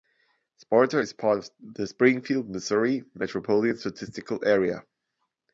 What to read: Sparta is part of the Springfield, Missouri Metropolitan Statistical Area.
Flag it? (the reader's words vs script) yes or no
no